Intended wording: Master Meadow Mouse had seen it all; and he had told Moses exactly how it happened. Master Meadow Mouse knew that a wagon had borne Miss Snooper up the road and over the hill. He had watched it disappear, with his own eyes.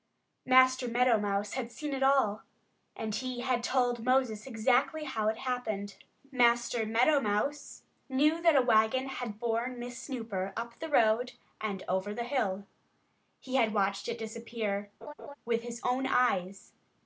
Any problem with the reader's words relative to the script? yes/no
no